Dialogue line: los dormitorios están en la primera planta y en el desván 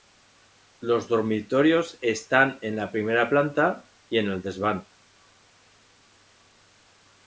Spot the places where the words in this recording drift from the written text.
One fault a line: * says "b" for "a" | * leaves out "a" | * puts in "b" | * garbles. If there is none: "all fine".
all fine